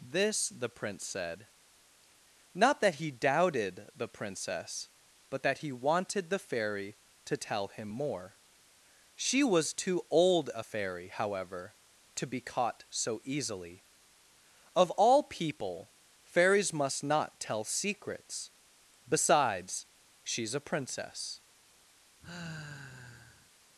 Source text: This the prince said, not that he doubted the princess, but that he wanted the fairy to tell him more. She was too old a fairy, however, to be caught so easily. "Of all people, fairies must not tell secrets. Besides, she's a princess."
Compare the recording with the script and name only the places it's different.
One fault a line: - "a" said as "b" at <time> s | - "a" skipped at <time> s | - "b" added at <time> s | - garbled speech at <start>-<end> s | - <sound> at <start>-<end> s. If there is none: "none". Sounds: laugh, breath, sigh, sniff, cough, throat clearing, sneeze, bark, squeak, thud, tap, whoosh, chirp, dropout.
- sigh at 22.2-23.5 s